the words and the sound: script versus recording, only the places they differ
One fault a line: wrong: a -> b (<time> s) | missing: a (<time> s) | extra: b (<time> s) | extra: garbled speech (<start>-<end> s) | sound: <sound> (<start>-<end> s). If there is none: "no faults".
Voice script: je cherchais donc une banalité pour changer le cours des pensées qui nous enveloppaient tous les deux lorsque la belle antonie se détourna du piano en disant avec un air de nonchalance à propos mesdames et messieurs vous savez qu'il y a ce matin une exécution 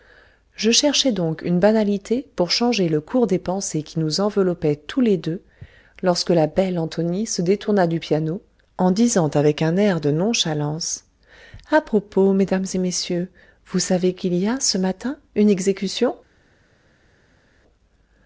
no faults